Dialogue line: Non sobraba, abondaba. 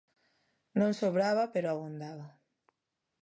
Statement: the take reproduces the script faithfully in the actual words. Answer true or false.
false